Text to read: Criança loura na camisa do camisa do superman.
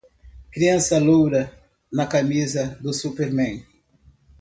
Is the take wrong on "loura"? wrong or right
right